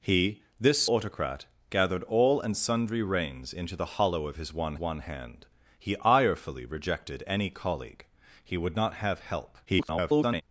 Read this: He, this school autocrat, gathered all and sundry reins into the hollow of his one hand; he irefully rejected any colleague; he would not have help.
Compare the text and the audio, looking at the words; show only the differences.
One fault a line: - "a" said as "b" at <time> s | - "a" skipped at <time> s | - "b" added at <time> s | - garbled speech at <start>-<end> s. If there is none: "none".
- "school" skipped at 0.8 s
- "one" added at 4.8 s
- garbled speech at 9.7-10.4 s